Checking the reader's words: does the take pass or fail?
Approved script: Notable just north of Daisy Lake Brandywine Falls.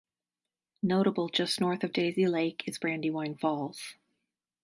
fail